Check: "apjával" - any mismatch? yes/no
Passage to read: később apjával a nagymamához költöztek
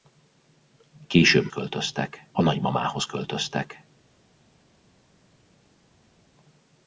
yes